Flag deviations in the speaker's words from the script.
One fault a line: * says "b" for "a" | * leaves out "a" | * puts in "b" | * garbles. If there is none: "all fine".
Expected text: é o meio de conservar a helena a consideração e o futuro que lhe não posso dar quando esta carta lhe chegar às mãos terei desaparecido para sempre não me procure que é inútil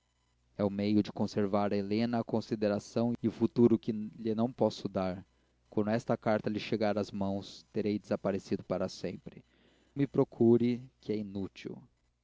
* leaves out "não"